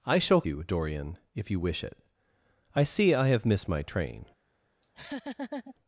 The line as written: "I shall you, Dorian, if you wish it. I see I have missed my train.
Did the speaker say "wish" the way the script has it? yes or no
yes